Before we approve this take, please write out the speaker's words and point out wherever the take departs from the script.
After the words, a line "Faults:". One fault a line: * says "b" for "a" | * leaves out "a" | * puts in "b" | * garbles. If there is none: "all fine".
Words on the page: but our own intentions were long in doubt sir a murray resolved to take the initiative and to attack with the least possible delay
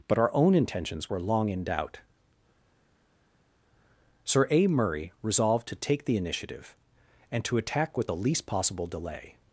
but our own intentions were long in doubt sir a murray resolved to take the initiative and to attack with the least possible delay
Faults:
all fine